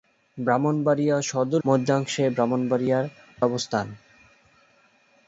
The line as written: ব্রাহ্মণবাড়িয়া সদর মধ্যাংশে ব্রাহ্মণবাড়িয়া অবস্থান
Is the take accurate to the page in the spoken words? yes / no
yes